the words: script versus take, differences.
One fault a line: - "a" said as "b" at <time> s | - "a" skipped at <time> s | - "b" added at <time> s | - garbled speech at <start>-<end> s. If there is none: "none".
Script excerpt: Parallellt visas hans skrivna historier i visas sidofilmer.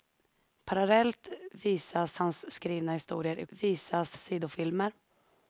none